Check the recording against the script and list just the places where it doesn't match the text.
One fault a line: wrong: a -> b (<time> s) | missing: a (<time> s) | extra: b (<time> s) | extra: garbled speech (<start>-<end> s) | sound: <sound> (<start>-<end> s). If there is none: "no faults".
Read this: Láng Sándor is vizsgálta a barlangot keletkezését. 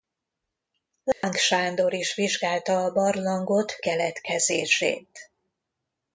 sound: dropout (1.1-1.2 s)